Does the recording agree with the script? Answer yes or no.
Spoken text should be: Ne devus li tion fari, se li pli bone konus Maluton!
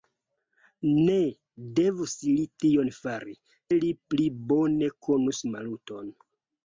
no